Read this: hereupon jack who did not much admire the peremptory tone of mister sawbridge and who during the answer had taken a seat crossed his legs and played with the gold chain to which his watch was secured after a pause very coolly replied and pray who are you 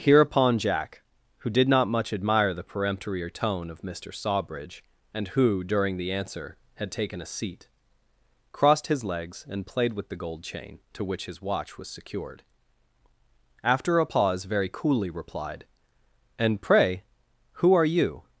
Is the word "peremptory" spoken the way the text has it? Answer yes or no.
yes